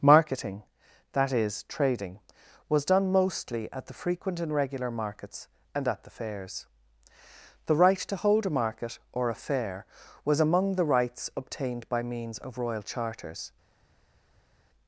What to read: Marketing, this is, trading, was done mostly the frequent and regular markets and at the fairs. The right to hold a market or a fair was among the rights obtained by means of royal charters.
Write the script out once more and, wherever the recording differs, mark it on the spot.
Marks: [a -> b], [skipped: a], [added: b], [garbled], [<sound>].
Marketing, [this -> that] is, trading, was done mostly [added: at] the frequent and regular markets and at the fairs. The right to hold a market or a fair was among the rights obtained by means of royal charters.